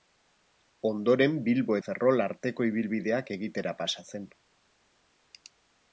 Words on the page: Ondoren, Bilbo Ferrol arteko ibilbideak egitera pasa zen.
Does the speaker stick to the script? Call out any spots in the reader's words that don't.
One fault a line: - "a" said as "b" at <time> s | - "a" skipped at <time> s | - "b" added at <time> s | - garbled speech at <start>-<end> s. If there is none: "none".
none